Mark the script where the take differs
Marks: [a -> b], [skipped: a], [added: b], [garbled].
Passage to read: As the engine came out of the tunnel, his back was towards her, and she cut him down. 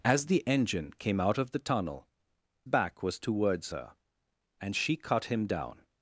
As the engine came out of the tunnel, [skipped: his] back was towards her, and she cut him down.